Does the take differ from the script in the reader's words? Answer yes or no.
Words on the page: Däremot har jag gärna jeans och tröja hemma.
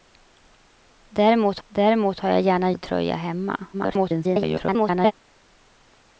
yes